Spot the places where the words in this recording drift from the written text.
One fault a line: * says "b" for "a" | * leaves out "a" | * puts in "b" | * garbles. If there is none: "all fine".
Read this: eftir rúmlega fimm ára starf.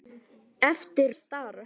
* leaves out "rúmlega fimm ára"